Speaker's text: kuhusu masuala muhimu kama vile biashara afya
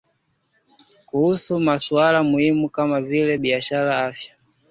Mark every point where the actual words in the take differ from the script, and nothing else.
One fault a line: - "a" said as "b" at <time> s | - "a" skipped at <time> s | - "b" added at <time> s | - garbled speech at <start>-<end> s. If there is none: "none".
none